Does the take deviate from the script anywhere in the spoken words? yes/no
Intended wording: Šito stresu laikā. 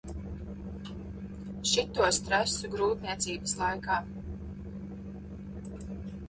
yes